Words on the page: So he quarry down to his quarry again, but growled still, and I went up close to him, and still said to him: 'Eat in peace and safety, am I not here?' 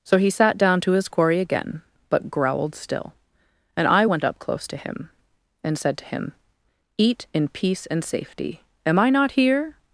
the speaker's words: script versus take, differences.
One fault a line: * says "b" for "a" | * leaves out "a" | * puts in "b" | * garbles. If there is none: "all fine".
* says "sat" for "quarry"
* leaves out "still"